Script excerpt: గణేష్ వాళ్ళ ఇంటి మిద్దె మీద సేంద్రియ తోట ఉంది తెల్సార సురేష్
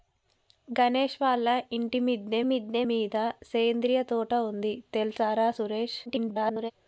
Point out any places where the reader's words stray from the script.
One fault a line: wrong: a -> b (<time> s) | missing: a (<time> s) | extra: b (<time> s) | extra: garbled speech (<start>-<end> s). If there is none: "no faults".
extra: మిద్దె (2.4 s)
extra: garbled speech (6.1-6.7 s)